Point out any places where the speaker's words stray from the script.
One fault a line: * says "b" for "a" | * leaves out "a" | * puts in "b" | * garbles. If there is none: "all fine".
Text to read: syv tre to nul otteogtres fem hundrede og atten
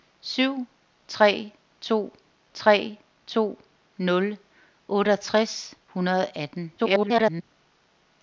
* puts in "tre to"
* leaves out "fem"
* garbles